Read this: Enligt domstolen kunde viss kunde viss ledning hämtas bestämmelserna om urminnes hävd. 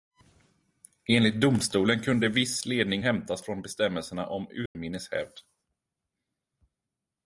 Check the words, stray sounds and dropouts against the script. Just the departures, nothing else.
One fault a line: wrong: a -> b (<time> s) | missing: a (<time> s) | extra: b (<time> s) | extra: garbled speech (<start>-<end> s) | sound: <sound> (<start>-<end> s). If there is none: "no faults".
missing: kunde viss (2.6 s)
extra: från (3.4 s)
sound: dropout (4.7-4.8 s)